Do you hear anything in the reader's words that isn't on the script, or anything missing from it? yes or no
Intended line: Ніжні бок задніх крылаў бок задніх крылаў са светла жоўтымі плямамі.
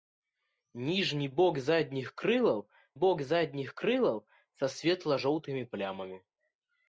no